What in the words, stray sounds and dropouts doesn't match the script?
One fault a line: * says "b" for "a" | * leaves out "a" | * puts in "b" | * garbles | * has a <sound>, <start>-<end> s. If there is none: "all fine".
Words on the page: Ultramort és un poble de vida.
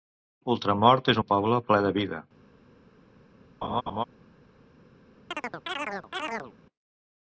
* puts in "ple"
* has a laugh, 3.6-4.0 s
* has a chirp, 5.3-6.5 s